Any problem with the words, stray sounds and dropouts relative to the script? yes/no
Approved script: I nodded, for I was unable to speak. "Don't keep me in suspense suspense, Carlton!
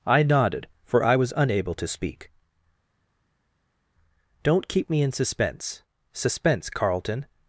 no